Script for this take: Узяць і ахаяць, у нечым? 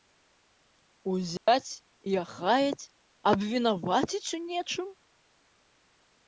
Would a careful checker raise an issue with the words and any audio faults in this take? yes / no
yes